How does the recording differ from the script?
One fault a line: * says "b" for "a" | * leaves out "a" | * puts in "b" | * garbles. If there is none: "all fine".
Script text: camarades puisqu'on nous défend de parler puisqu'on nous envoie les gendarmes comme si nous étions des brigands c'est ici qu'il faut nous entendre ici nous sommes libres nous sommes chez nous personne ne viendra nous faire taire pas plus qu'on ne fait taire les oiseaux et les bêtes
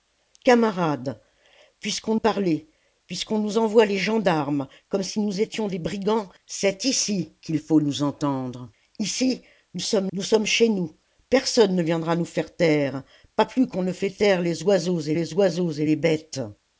* leaves out "nous défend de"
* leaves out "libres"
* puts in "oiseaux et les"